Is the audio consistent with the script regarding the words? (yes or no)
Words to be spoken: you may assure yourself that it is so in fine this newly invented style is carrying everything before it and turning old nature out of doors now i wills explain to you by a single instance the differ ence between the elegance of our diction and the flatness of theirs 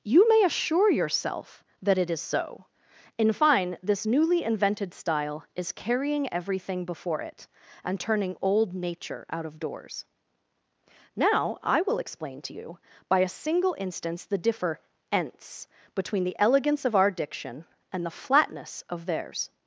no